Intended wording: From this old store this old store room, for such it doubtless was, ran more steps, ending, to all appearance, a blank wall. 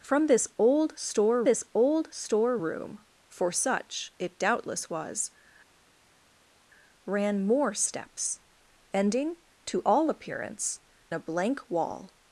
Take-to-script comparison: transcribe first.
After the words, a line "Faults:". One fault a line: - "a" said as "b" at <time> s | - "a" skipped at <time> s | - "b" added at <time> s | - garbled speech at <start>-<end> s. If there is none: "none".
From this old store this old store room, for such it doubtless was, ran more steps, ending, to all appearance, a blank wall.
Faults:
none